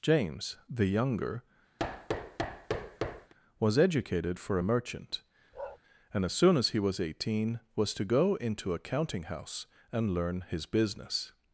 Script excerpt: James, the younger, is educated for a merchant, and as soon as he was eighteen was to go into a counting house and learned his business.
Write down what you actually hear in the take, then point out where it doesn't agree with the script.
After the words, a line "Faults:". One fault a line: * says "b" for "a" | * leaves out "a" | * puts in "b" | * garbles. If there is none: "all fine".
James, the younger, was educated for a merchant, and as soon as he was eighteen was to go into a counting house and learn his business.
Faults:
* says "was" for "is"
* says "learn" for "learned"